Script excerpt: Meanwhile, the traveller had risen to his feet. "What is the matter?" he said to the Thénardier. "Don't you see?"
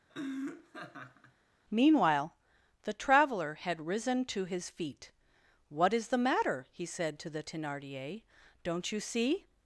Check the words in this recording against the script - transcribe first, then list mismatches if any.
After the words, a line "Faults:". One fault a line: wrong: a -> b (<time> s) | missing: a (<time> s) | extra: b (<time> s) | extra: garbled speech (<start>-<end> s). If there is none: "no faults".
Meanwhile, the traveller had risen to his feet. "What is the matter?" he said to the Thénardier. "Don't you see?"
Faults:
no faults